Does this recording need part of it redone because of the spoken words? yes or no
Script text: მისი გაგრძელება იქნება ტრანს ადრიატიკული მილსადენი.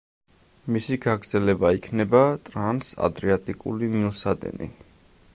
no